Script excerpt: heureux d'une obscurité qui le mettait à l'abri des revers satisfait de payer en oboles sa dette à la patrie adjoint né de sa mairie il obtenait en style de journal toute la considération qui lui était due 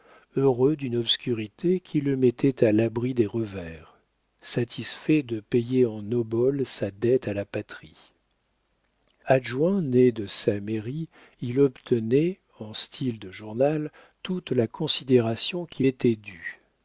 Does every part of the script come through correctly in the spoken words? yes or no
no